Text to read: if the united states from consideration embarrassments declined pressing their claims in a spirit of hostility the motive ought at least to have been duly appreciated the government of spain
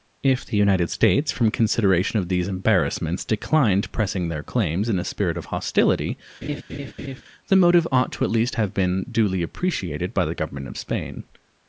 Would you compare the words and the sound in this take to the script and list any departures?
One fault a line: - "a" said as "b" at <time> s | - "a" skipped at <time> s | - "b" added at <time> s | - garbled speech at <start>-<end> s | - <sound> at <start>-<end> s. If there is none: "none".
- "of these" added at 2.2 s
- laugh at 6.4-7.2 s
- "by" added at 10.1 s